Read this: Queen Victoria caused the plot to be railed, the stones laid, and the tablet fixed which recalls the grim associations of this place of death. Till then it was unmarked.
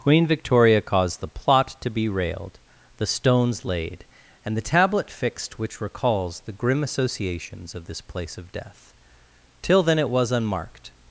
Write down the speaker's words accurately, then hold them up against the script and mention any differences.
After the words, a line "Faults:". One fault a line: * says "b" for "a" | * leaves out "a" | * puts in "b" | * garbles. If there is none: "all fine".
Queen Victoria caused the plot to be railed, the stones laid, and the tablet fixed which recalls the grim associations of this place of death. Till then it was unmarked.
Faults:
all fine